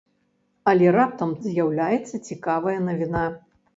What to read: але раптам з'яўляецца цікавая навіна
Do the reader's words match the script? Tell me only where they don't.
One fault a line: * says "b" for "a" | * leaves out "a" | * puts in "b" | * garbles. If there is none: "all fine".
all fine